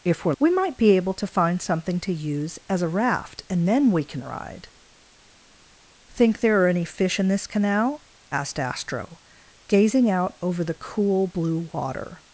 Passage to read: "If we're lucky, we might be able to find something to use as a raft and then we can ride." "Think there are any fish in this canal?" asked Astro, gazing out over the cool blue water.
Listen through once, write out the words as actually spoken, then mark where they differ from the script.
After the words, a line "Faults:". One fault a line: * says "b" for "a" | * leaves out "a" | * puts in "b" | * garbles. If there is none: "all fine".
"If we're we might be able to find something to use as a raft and then we can ride." "Think there are any fish in this canal?" asked Astro, gazing out over the cool blue water.
Faults:
* leaves out "lucky"